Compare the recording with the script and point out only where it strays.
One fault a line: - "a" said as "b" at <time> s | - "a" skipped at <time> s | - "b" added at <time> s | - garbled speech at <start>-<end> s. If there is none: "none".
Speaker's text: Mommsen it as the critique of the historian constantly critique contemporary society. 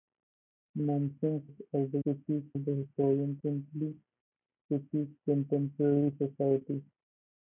none